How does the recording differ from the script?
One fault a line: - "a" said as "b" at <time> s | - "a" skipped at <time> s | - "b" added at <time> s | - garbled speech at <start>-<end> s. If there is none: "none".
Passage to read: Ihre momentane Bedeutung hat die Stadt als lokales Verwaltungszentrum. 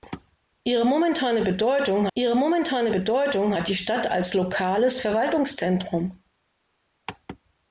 - "ihre momentane Bedeutung" added at 2.1 s